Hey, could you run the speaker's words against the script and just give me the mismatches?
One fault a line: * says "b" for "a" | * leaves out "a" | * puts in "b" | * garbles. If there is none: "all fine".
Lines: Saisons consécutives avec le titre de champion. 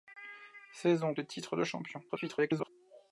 * leaves out "consécutives avec"
* garbles